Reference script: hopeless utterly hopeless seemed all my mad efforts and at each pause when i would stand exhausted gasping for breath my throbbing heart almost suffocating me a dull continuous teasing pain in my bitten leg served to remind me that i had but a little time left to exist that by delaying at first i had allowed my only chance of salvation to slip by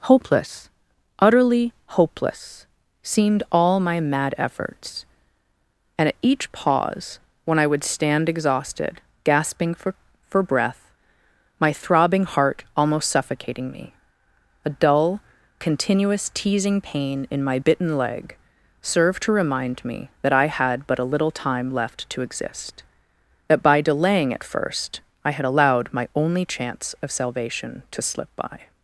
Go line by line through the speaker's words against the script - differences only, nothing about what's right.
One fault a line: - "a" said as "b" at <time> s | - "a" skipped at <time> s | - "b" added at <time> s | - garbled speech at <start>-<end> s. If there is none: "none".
- "for" added at 10.3 s